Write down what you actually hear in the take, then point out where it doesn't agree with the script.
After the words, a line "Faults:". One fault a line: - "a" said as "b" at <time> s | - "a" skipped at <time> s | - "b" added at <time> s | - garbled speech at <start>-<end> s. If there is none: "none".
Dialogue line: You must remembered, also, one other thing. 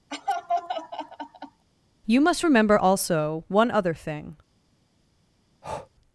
You must remember, also, one other thing.
Faults:
- "remembered" said as "remember" at 2.4 s